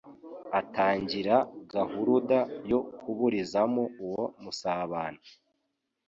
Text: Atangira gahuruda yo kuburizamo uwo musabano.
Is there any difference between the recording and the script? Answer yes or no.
no